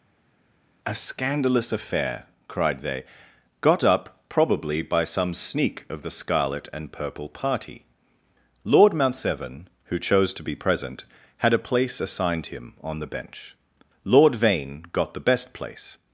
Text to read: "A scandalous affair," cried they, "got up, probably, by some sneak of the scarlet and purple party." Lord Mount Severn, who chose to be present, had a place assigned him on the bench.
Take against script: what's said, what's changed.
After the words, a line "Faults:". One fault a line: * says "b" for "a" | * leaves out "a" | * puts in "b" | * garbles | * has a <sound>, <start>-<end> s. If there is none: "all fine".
"A scandalous affair," cried they, "got up, probably, by some sneak of the scarlet and purple party." Lord Mount Severn, who chose to be present, had a place assigned him on the bench. Lord Vane got the best place
Faults:
* puts in "Lord Vane got the best place"